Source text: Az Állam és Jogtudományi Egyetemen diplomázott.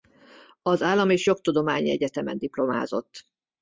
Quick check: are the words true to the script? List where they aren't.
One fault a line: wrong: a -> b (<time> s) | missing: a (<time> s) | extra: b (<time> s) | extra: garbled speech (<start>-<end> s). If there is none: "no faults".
no faults